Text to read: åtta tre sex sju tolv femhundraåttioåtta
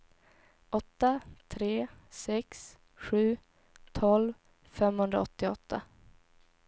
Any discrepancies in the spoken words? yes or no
no